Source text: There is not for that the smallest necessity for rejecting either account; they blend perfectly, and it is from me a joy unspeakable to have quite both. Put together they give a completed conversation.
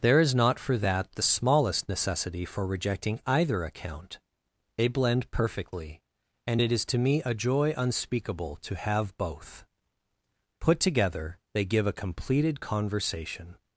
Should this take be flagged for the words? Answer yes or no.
yes